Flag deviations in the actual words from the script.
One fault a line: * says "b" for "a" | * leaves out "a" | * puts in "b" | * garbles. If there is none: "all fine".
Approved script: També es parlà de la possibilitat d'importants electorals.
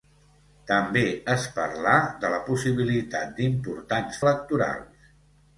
all fine